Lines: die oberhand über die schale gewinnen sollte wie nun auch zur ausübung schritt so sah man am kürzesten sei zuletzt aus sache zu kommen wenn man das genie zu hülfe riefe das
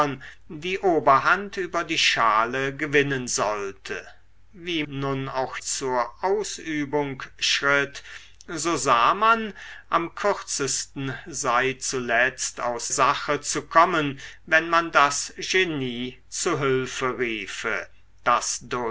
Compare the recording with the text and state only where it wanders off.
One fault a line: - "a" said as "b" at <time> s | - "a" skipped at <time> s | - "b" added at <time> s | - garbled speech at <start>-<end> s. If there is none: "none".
none